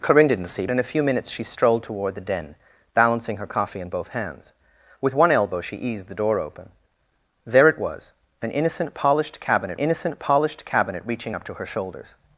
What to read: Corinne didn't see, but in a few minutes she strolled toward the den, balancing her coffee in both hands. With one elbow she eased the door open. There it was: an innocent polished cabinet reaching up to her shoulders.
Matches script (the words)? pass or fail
fail